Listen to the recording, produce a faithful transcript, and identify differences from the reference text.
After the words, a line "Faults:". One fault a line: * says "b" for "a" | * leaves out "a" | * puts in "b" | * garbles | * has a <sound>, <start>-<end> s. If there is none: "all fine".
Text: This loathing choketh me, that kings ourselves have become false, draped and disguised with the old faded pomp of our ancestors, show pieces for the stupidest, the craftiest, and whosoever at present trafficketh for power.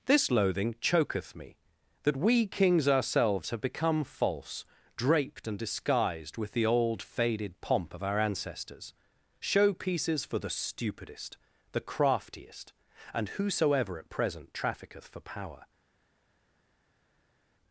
This loathing choketh me, that we kings ourselves have become false, draped and disguised with the old faded pomp of our ancestors, show pieces for the stupidest, the craftiest, and whosoever at present trafficketh for power.
Faults:
* puts in "we"